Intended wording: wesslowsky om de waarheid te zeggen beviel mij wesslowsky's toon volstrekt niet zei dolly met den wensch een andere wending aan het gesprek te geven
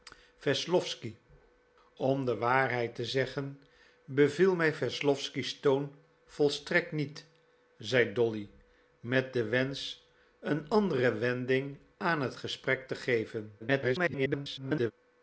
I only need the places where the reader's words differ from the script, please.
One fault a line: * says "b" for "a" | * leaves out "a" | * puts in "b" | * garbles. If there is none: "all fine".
* garbles